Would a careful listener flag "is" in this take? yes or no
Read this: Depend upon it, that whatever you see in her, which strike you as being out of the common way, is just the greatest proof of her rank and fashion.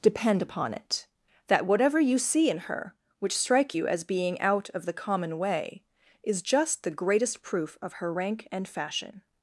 no